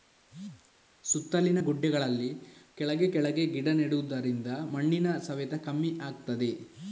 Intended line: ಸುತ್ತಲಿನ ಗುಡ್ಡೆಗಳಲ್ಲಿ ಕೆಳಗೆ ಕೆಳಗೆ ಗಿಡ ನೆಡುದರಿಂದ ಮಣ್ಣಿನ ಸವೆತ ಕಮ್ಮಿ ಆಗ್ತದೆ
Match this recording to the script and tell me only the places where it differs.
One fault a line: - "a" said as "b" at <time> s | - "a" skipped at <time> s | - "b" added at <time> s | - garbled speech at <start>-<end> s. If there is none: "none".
none